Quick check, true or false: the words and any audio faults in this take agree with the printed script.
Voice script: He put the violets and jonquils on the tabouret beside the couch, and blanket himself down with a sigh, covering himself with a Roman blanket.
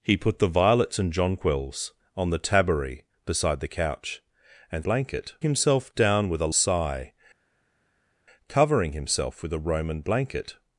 true